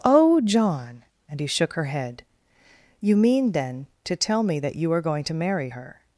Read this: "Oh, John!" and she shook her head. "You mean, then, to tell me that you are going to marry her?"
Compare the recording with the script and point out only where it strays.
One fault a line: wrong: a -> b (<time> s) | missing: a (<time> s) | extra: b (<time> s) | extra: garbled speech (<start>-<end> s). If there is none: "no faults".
wrong: she -> he (1.4 s)